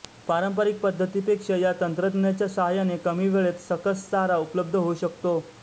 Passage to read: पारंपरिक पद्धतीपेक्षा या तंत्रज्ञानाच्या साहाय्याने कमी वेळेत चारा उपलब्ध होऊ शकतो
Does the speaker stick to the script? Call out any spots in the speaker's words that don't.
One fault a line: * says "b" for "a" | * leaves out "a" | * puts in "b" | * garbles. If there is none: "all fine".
* puts in "सकस"